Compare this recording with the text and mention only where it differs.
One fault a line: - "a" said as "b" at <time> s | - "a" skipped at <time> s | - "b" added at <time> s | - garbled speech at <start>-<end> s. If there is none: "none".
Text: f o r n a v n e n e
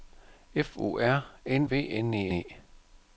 - "a" skipped at 1.7 s
- "n" skipped at 2.3 s